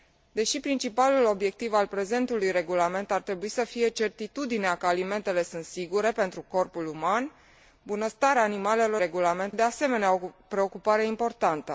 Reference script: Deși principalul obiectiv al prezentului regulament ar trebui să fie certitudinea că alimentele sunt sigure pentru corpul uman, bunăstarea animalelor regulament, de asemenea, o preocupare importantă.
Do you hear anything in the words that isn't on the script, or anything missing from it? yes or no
no